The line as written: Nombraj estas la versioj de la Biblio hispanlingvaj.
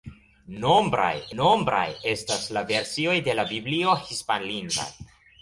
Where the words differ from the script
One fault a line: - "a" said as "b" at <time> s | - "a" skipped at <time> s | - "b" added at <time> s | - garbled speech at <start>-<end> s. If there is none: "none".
- "nombraj" added at 1.4 s